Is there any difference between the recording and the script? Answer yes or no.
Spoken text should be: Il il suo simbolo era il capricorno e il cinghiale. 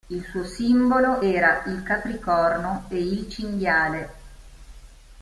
yes